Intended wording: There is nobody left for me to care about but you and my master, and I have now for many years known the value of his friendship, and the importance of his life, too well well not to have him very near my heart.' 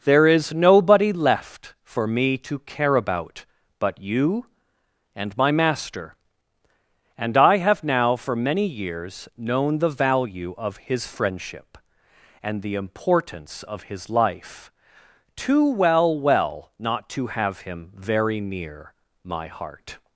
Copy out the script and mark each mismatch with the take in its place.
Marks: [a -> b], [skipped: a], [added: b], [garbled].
There is nobody left for me to care about but you and my master, and I have now for many years known the value of his friendship, and the importance of his life, too well well not to have him very near my heart.'